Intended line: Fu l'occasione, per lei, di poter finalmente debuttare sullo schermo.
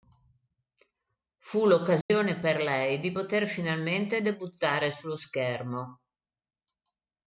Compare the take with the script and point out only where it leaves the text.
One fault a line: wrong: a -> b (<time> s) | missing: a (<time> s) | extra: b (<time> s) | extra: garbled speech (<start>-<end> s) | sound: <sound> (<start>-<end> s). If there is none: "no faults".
sound: dropout (2.0-2.1 s)